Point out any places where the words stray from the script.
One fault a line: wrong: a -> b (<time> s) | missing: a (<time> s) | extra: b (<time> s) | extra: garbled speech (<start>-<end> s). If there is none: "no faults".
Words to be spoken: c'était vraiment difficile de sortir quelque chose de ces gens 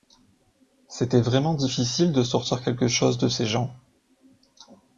no faults